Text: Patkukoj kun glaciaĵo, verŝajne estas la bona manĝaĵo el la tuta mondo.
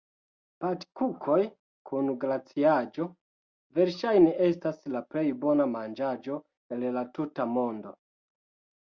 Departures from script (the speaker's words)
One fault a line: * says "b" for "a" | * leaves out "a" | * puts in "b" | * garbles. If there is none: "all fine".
* puts in "plej"